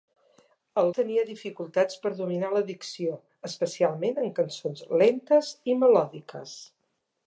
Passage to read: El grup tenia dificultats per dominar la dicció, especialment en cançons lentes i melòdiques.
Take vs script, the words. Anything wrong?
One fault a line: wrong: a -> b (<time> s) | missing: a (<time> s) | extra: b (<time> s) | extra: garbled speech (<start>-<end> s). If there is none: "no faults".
missing: grup (0.9 s)